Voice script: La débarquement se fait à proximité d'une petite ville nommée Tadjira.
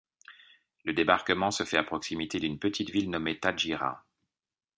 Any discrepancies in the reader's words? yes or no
yes